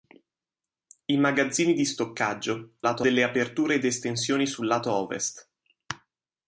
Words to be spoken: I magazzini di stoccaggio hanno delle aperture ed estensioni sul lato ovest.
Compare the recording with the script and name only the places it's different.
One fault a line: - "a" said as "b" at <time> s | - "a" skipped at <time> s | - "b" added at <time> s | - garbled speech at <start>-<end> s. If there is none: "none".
- "hanno" said as "lato" at 2.8 s